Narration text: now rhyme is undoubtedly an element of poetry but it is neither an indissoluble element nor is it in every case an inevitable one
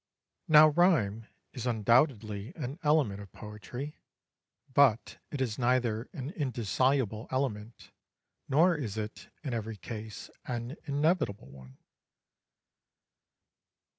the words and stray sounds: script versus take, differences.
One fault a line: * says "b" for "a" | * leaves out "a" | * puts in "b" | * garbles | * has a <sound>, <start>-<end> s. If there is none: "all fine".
all fine